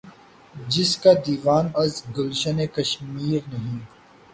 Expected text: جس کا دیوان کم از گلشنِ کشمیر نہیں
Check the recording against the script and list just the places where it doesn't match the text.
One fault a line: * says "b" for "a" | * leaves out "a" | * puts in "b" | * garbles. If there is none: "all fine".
* leaves out "کم"